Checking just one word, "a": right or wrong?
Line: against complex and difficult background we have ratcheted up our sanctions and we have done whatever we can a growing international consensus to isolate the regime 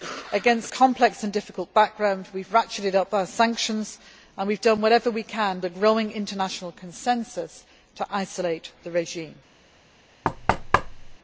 right